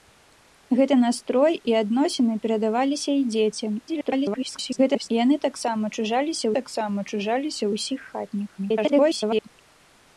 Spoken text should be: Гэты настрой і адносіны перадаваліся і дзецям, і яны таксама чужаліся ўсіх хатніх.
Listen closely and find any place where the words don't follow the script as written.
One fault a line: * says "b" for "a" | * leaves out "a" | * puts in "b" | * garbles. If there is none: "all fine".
* garbles
* puts in "таксама чужаліся"
* garbles